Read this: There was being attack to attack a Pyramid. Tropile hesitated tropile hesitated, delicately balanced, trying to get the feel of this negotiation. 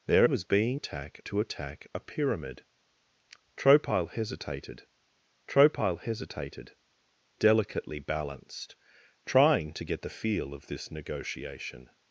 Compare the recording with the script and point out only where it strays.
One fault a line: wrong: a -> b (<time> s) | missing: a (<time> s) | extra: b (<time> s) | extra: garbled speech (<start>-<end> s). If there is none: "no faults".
no faults